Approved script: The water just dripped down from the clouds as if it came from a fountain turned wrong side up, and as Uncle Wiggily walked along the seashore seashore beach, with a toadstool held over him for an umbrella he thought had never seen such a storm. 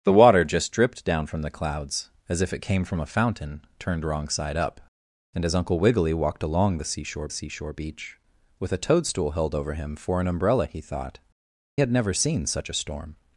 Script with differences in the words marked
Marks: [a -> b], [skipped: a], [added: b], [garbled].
The water just dripped down from the clouds as if it came from a fountain turned wrong side up, and as Uncle Wiggily walked along the seashore seashore beach, with a toadstool held over him for an umbrella he thought had never seen such a storm.